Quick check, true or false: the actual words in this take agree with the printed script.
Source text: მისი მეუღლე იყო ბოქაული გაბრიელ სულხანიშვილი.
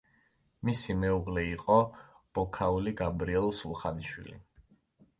true